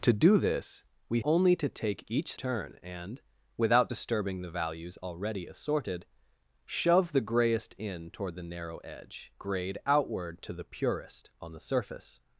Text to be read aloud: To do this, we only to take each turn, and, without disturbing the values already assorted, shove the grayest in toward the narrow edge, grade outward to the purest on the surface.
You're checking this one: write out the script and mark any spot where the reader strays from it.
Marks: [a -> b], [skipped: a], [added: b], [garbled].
To do this, we only to take each turn, and, without disturbing the values already assorted, shove the grayest in toward the narrow edge, grade outward to the purest on the surface.